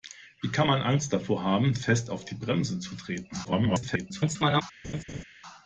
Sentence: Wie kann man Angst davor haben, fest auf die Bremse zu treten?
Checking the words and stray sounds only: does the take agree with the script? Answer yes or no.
no